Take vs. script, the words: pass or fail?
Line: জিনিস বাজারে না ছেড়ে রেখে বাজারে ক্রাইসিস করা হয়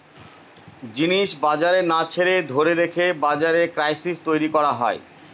fail